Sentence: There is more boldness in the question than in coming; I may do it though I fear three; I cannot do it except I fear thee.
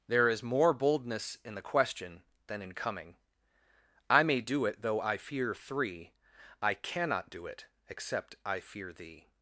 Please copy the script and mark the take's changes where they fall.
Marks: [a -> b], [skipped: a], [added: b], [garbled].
There is more boldness in the question than in coming; I may do it though I fear three; I cannot do it except I fear thee.